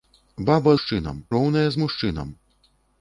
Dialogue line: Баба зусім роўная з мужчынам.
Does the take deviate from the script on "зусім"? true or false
true